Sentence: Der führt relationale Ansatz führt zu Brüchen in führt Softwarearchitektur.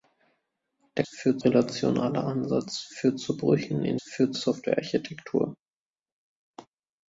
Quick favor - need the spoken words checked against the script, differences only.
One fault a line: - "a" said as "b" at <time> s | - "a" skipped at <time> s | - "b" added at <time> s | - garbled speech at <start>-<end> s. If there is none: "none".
none